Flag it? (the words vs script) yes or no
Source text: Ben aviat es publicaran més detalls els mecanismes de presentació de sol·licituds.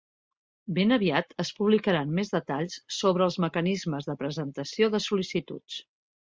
yes